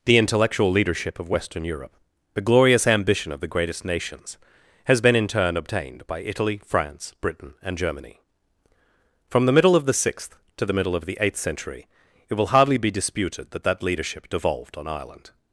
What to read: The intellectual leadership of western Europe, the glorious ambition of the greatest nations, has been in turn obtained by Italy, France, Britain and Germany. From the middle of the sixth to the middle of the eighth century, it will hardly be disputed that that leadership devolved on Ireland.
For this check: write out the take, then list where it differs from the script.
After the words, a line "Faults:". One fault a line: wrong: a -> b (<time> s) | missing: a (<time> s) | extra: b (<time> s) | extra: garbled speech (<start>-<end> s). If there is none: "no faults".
The intellectual leadership of western Europe, the glorious ambition of the greatest nations, has been in turn obtained by Italy, France, Britain and Germany. From the middle of the sixth to the middle of the eighth century, it will hardly be disputed that that leadership devolved on Ireland.
Faults:
no faults